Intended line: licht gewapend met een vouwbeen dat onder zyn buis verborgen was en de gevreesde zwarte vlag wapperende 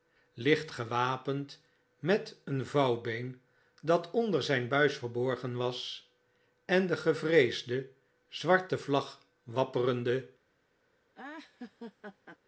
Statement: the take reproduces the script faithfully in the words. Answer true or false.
true